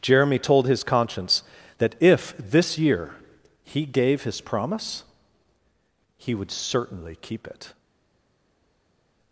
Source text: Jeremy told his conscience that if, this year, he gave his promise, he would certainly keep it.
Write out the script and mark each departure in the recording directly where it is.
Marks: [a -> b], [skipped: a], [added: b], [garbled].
Jeremy told his conscience that if, this year, he gave his promise, he would certainly keep it.